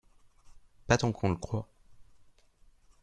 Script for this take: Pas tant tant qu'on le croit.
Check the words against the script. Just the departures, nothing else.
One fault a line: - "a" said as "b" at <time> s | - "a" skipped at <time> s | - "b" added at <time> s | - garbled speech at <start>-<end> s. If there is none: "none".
- "tant" skipped at 1.1 s